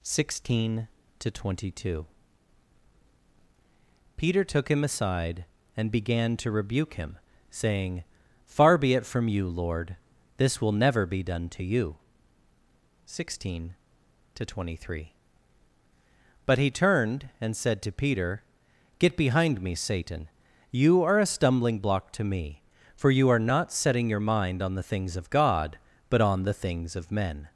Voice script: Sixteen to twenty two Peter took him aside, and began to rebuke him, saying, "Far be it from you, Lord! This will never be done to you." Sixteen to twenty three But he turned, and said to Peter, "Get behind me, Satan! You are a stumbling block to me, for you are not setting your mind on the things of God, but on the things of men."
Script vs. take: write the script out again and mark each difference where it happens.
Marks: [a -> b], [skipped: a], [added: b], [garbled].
Sixteen to twenty two Peter took him aside, and began to rebuke him, saying, "Far be it from you, Lord! This will never be done to you." Sixteen to twenty three But he turned, and said to Peter, "Get behind me, Satan! You are a stumbling block to me, for you are not setting your mind on the things of God, but on the things of men."